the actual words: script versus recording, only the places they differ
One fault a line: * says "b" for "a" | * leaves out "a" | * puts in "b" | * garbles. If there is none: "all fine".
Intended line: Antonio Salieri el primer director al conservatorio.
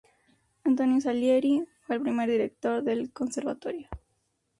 * puts in "fue"
* says "del" for "al"